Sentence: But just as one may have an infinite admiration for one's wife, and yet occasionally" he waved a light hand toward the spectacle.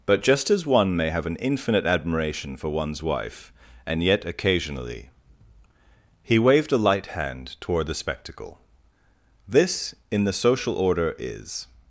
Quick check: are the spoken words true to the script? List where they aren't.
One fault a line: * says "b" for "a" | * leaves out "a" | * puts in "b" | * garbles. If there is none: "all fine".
* puts in "This in the social order is"